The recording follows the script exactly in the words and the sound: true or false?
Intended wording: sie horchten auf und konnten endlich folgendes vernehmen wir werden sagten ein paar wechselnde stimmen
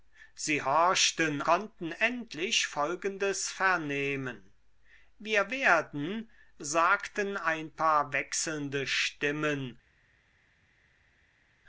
false